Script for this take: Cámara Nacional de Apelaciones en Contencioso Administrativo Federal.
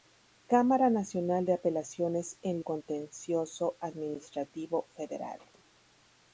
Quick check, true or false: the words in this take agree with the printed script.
true